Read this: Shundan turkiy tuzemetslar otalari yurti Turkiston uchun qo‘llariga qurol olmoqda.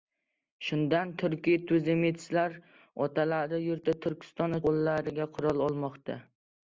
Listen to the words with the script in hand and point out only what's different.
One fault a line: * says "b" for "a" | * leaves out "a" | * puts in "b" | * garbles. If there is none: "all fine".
* leaves out "uchun"